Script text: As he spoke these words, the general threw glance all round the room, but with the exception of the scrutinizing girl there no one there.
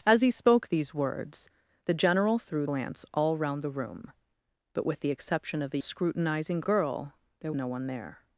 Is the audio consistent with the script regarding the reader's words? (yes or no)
yes